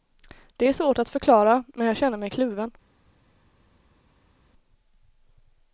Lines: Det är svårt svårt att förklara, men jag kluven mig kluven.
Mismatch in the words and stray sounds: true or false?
true